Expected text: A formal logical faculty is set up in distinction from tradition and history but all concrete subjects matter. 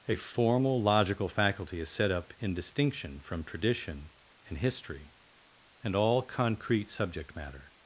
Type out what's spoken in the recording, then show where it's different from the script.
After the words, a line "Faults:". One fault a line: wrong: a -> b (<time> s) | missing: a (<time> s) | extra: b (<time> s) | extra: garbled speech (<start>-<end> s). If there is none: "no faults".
A formal logical faculty is set up in distinction from tradition and history and all concrete subject matter.
Faults:
wrong: but -> and (5.8 s)
wrong: subjects -> subject (6.9 s)